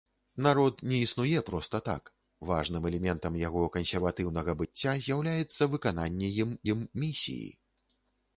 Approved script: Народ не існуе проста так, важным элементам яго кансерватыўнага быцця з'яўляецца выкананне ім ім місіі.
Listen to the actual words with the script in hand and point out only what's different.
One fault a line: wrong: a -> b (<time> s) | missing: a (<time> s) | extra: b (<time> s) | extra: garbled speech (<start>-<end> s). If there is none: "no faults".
no faults